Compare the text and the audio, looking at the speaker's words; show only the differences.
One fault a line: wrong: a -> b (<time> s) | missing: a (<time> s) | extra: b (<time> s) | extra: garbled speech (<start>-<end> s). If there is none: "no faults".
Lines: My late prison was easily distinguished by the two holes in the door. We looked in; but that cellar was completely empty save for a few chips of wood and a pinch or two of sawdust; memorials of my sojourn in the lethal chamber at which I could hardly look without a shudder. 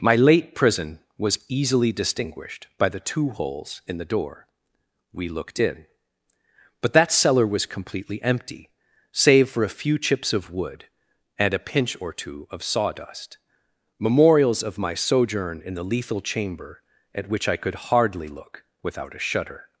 no faults